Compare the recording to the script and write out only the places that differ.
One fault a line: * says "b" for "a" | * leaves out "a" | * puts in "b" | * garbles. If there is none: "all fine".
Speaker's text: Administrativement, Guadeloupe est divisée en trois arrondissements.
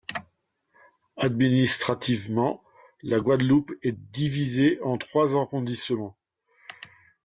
* puts in "la"